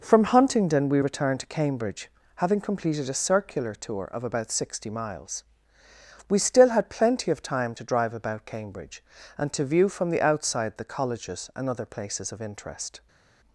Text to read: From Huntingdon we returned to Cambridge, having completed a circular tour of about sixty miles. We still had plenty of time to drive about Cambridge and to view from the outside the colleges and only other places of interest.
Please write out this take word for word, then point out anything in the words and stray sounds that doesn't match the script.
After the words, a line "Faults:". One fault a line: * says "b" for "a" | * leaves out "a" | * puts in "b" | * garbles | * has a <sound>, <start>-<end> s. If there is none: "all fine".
From Huntingdon we returned to Cambridge, having completed a circular tour of about sixty miles. We still had plenty of time to drive about Cambridge and to view from the outside the colleges and other places of interest.
Faults:
* leaves out "only"